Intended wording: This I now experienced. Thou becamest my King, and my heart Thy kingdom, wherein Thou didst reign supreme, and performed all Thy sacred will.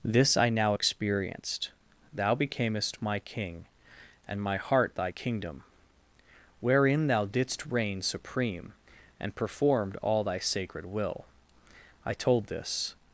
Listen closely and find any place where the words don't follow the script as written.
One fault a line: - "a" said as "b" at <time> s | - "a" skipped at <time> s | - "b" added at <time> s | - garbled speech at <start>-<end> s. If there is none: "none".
- "I told this" added at 12.0 s